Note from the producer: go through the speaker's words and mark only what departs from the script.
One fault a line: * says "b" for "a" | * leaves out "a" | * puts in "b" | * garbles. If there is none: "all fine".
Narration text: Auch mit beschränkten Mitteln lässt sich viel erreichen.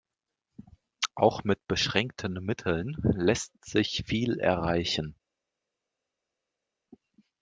all fine